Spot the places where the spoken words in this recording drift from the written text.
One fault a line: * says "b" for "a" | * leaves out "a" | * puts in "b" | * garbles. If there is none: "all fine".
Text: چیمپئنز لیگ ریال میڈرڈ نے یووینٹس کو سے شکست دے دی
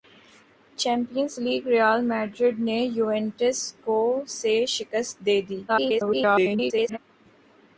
* garbles